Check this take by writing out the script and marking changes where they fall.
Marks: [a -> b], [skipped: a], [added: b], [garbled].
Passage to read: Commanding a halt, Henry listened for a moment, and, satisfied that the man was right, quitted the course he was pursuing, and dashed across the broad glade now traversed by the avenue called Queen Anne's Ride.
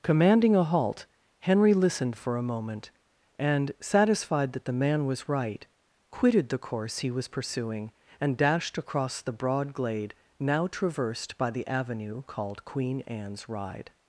Commanding a halt, Henry listened for a moment, and, satisfied that the man was right, quitted the course he was pursuing, and dashed across the broad glade now traversed by the avenue called Queen Anne's Ride.